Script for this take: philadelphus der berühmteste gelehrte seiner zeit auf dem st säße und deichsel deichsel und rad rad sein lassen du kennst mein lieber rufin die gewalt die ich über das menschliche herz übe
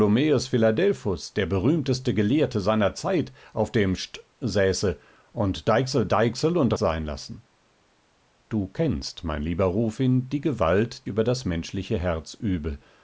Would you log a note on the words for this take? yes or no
yes